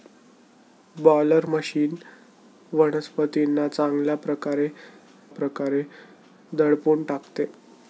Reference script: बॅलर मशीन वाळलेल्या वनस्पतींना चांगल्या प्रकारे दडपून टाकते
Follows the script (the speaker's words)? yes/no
no